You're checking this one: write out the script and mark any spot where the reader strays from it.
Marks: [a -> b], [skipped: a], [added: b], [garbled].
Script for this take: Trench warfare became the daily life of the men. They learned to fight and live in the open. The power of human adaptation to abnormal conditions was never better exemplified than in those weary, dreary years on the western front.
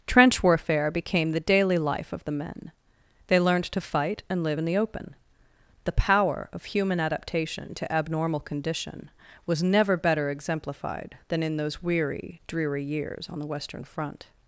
Trench warfare became the daily life of the men. They learned to fight and live in the open. The power of human adaptation to abnormal [conditions -> condition] was never better exemplified than in those weary, dreary years on the western front.